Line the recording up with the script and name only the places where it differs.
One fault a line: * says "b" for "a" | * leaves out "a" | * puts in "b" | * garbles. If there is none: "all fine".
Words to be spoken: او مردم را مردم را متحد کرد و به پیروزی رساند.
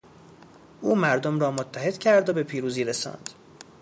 * leaves out "مردم را"